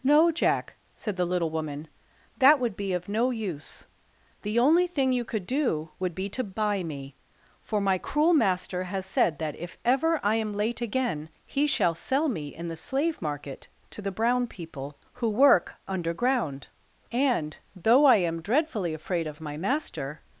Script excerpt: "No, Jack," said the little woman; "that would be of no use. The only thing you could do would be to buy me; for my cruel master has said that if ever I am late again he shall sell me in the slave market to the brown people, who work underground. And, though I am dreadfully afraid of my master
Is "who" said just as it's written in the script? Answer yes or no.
yes